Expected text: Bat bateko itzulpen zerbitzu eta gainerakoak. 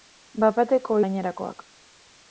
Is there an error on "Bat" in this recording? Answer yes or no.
no